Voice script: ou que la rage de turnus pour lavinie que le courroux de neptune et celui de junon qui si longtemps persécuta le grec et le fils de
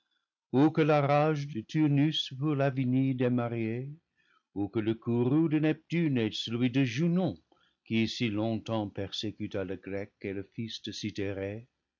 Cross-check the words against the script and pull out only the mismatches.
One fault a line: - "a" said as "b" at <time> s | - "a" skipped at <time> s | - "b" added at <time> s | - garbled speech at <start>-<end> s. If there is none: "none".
- "démariée ou" added at 3.2 s